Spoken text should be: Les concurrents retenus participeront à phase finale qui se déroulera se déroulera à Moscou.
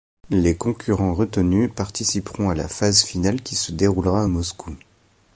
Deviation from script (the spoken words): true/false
true